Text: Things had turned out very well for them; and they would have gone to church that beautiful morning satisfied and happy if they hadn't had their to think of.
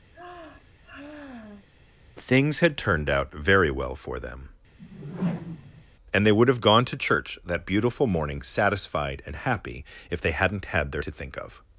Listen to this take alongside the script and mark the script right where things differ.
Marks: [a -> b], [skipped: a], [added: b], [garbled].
Things had turned out very well for them; and they would have gone to church that beautiful morning satisfied and happy if they hadn't had their to think of.